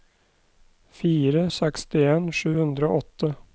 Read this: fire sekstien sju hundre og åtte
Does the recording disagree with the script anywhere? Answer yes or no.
no